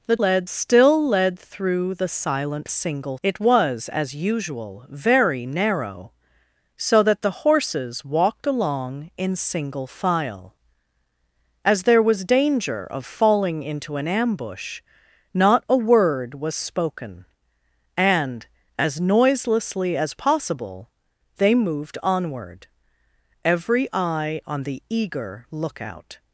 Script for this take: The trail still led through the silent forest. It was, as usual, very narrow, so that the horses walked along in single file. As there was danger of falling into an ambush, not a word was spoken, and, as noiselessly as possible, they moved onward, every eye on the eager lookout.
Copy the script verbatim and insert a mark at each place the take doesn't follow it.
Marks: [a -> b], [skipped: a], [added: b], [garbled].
The [trail -> led] still led through the silent [forest. -> single] It was, as usual, very narrow, so that the horses walked along in single file. As there was danger of falling into an ambush, not a word was spoken, and, as noiselessly as possible, they moved onward, every eye on the eager lookout.